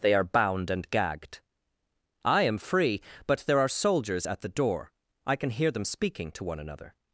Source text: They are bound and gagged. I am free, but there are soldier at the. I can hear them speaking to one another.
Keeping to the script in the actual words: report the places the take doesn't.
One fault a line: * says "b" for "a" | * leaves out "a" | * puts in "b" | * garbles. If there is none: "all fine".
* says "soldiers" for "soldier"
* puts in "door"